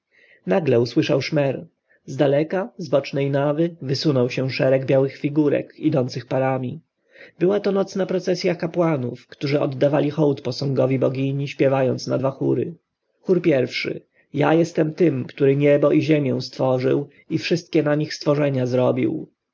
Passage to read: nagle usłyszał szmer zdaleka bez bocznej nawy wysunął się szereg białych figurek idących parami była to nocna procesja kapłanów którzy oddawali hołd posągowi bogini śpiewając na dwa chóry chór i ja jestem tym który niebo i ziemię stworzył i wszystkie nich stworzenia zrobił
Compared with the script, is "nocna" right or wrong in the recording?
right